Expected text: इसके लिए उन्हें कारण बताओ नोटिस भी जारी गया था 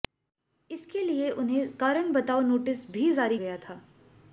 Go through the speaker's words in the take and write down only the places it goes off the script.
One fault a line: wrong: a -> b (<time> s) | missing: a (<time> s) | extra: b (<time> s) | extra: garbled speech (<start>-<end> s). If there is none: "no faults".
no faults